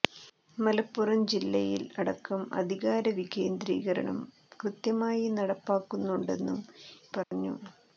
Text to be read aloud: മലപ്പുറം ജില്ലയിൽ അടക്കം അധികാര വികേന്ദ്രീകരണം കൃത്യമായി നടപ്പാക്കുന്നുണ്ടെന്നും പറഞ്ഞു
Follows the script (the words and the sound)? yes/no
no